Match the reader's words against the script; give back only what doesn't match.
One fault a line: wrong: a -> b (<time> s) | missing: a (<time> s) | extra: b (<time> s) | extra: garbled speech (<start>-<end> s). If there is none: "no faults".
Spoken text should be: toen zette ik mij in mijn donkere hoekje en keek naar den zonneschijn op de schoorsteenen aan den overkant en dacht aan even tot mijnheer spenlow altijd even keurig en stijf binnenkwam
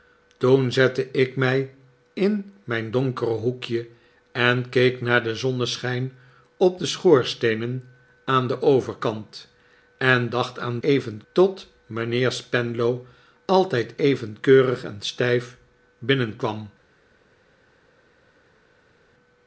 no faults